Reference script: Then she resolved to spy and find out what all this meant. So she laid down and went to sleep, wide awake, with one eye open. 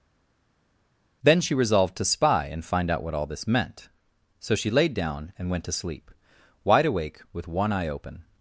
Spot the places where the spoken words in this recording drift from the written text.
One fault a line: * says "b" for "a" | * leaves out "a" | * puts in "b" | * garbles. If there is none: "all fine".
all fine